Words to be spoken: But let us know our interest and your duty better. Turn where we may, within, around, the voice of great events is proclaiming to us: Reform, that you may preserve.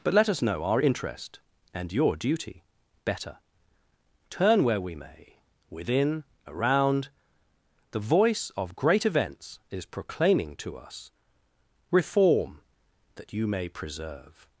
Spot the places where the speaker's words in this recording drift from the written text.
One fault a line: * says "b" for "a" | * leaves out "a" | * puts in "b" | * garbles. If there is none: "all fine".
all fine